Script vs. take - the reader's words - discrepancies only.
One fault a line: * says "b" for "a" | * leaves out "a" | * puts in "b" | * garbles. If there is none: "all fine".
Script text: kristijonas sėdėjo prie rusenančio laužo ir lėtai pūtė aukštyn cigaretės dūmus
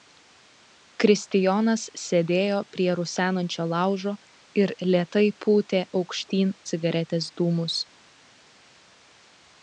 all fine